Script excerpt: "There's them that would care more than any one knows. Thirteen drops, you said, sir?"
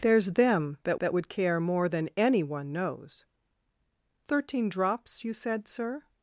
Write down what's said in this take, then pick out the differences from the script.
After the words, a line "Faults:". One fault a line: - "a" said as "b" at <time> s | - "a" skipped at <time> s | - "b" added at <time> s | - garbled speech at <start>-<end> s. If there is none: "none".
"There's them that that would care more than any one knows. Thirteen drops, you said, sir?"
Faults:
- "that" added at 1.0 s